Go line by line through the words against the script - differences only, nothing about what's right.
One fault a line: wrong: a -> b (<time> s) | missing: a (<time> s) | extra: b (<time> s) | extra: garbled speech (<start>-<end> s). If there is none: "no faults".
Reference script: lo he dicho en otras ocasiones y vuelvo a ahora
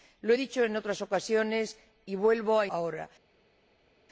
no faults